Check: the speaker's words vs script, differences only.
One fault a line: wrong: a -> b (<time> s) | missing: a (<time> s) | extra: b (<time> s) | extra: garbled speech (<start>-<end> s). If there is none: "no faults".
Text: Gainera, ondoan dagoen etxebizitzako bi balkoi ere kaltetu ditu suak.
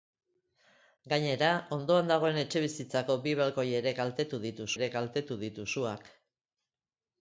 extra: ere kaltetu ditu (4.8 s)